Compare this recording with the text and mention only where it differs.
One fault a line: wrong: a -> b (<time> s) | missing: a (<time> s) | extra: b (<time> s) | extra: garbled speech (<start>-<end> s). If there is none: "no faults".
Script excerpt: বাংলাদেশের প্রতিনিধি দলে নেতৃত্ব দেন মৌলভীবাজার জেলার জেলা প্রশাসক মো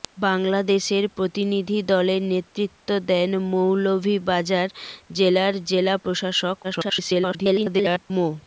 extra: garbled speech (6.6-8.1 s)